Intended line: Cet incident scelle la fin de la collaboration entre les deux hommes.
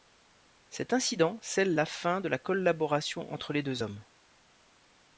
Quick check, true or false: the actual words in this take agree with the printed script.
true